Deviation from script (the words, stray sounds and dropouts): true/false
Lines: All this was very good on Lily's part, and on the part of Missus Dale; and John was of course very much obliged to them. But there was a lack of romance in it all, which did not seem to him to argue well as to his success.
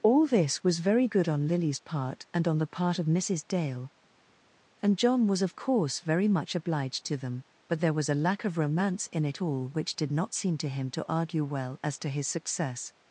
false